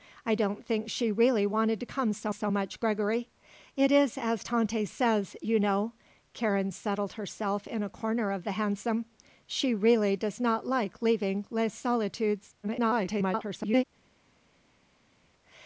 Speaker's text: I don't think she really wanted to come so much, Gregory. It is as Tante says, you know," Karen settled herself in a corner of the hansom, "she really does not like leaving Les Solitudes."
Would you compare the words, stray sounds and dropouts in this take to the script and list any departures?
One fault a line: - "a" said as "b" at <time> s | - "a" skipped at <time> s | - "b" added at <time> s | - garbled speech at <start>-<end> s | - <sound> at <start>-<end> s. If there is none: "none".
- "so" added at 2.3 s
- garbled speech at 12.6-13.9 s